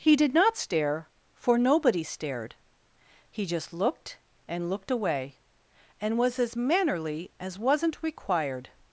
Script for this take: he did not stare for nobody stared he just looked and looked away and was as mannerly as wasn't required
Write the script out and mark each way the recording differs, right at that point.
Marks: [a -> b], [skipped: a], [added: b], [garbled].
he did not stare for nobody stared he just looked and looked away and was as mannerly as wasn't required